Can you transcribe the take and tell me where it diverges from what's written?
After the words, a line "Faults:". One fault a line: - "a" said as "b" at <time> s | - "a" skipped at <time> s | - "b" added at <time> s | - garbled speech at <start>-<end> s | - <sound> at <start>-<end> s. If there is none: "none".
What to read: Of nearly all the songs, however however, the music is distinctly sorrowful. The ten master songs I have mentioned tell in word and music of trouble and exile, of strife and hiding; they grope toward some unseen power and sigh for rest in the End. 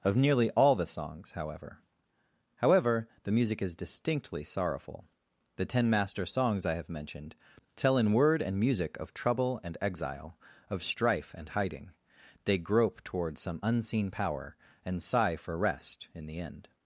Of nearly all the songs, however however, the music is distinctly sorrowful. The ten master songs I have mentioned tell in word and music of trouble and exile, of strife and hiding; they grope toward some unseen power and sigh for rest in the End.
Faults:
none